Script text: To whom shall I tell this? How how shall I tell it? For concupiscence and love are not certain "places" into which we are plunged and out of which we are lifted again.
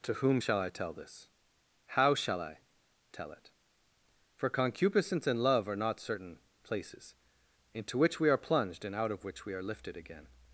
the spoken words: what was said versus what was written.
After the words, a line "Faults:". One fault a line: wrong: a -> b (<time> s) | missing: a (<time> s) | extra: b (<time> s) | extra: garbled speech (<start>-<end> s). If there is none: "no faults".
To whom shall I tell this? How shall I tell it? For concupiscence and love are not certain "places" into which we are plunged and out of which we are lifted again.
Faults:
missing: how (2.1 s)